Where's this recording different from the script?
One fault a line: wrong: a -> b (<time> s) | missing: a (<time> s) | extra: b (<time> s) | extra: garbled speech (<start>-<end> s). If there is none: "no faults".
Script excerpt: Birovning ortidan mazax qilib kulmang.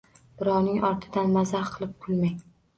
no faults